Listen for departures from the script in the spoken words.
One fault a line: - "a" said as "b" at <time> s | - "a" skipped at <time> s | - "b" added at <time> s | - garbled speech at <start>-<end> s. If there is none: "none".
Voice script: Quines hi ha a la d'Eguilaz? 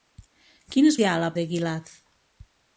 none